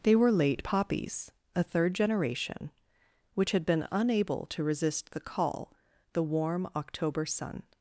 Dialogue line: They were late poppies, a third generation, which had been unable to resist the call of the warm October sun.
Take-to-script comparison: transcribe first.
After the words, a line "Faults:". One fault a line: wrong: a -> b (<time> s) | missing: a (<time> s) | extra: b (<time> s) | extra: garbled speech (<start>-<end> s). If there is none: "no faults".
They were late poppies, a third generation, which had been unable to resist the call the warm October sun.
Faults:
missing: of (5.7 s)